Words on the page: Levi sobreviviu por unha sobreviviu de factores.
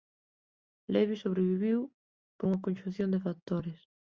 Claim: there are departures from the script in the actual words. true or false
true